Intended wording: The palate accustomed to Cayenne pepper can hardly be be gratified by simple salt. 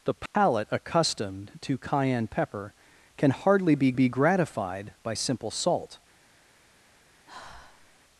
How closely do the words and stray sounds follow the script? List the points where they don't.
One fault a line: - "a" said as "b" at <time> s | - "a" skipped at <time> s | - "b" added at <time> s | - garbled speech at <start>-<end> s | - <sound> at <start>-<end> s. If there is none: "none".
- dropout at 0.3-0.3 s
- sigh at 7.3-8.0 s